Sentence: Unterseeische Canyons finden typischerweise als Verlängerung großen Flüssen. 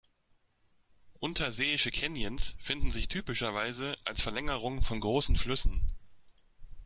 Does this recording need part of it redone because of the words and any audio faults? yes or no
yes